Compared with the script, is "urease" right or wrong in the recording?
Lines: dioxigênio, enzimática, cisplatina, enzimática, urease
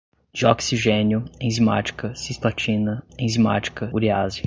right